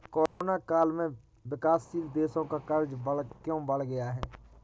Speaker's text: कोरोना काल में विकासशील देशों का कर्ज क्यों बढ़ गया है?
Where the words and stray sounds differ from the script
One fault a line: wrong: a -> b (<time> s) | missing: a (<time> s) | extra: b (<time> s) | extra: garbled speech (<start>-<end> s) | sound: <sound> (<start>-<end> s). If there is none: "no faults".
sound: dropout (0.3-0.4 s)